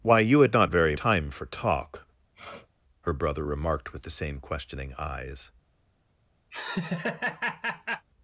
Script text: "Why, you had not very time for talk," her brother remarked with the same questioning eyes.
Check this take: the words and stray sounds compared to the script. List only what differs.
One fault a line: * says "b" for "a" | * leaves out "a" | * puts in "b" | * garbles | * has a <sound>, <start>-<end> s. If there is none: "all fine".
* has a sniff, 2.3-2.7 s
* has a laugh, 6.5-8.1 s